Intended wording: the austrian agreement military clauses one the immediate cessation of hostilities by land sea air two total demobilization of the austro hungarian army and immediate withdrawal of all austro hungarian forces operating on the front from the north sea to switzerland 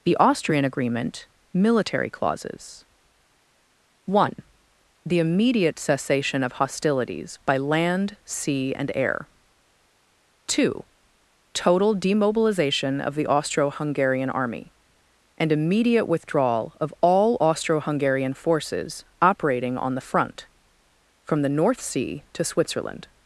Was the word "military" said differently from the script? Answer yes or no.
no